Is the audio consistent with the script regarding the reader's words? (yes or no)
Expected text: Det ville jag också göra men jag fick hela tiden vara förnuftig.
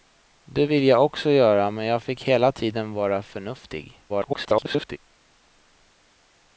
no